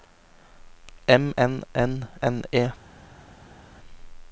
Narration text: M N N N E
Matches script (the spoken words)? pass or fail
pass